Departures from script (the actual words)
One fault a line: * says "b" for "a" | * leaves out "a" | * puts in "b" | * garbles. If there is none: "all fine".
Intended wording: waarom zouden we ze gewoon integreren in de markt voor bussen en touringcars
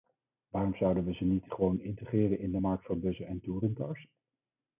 * puts in "niet"